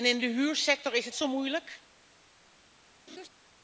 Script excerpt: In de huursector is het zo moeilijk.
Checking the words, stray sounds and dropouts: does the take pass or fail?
fail